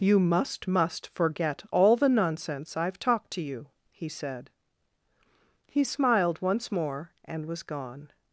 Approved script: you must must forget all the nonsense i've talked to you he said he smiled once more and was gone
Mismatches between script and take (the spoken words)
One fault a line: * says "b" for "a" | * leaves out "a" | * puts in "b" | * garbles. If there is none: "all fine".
all fine